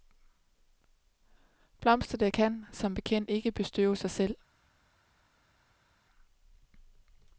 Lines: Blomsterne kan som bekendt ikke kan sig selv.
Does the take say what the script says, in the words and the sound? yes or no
no